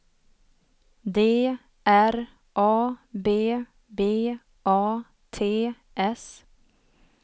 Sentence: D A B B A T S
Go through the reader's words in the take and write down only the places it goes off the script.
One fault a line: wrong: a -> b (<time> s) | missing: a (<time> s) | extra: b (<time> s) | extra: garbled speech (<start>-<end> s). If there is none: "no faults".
extra: R (1.9 s)